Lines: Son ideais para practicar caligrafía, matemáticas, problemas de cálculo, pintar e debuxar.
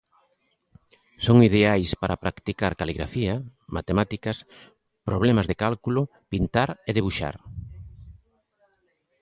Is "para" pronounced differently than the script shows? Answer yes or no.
no